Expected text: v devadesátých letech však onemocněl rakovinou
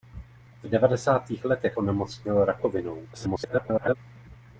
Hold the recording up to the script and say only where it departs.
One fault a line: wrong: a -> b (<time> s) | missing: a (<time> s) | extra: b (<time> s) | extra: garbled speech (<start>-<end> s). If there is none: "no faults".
missing: však (1.8 s)
extra: garbled speech (3.1-4.0 s)